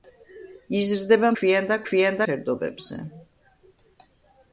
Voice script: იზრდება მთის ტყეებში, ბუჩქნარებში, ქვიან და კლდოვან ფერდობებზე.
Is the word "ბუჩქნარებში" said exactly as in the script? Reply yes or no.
no